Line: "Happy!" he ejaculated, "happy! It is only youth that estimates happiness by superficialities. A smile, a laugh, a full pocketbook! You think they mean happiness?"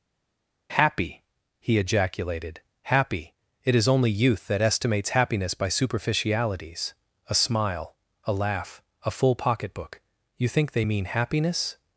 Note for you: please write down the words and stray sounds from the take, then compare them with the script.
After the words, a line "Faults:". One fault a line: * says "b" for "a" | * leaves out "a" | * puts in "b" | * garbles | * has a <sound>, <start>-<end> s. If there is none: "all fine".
"Happy!" he ejaculated, "happy! It is only youth that estimates happiness by superficialities. A smile, a laugh, a full pocketbook! You think they mean happiness?"
Faults:
all fine